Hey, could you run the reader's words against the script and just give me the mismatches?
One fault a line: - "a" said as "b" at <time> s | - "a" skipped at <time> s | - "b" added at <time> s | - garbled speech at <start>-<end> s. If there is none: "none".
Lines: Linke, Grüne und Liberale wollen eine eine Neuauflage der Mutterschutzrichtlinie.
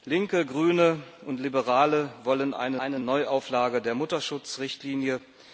none